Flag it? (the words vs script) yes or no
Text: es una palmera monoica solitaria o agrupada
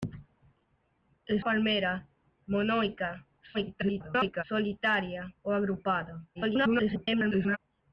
yes